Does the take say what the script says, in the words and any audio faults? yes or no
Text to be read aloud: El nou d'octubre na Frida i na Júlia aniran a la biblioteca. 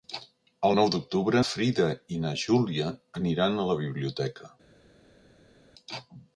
no